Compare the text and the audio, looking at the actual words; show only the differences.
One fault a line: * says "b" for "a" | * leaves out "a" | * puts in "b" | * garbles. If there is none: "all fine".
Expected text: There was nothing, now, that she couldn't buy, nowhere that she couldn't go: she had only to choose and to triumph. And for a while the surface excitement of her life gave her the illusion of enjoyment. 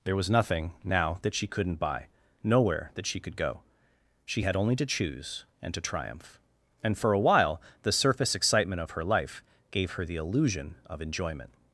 * says "could" for "couldn't"